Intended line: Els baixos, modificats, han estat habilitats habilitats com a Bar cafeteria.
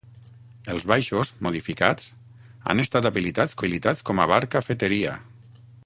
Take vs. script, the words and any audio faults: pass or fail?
pass